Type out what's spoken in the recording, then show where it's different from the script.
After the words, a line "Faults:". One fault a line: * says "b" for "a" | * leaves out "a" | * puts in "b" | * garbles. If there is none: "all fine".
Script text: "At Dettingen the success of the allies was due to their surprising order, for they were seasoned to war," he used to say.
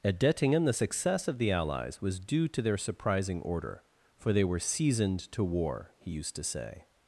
"At Dettingen the success of the allies was due to their surprising order, for they were seasoned to war," he used to say.
Faults:
all fine